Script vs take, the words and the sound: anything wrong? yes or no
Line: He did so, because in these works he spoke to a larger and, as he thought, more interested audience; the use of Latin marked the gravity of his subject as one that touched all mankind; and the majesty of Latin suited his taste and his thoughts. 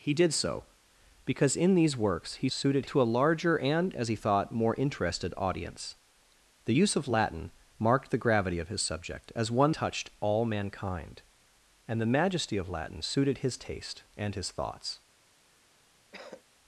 yes